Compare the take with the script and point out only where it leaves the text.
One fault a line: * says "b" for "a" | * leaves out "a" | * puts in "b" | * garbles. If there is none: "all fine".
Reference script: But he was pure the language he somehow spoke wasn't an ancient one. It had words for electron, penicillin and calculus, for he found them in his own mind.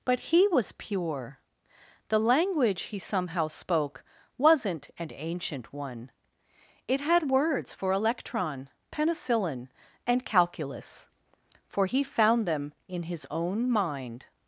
all fine